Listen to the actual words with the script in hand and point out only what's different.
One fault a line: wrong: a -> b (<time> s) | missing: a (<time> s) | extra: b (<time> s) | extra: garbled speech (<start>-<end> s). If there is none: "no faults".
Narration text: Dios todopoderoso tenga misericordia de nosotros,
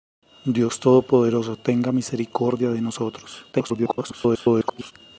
extra: garbled speech (3.5-4.9 s)